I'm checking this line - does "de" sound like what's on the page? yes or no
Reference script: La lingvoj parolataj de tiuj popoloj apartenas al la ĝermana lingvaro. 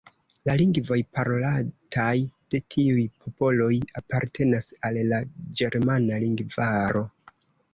yes